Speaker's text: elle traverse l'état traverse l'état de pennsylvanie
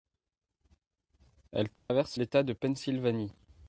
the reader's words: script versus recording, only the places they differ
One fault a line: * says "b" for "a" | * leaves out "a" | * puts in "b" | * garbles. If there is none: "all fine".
* leaves out "traverse l'état"